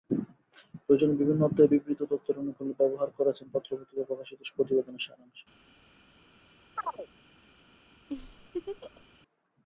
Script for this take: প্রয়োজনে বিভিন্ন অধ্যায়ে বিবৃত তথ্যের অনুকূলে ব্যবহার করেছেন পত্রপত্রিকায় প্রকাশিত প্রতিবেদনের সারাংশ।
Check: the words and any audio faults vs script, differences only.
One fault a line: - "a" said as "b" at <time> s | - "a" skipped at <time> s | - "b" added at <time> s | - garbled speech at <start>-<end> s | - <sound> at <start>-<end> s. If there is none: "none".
- chirp at 6.8-7.1 s
- laugh at 8.1-9.0 s